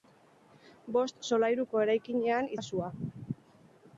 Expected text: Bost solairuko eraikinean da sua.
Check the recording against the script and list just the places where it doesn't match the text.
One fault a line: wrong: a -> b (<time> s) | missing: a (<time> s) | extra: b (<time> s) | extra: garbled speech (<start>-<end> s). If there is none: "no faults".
no faults